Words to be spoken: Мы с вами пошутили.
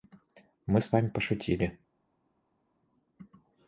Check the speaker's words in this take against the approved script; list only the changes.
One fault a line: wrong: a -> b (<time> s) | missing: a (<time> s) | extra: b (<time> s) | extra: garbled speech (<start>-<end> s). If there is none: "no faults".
no faults